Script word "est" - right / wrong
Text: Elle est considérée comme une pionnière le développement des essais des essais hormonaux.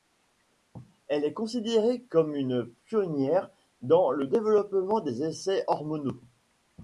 right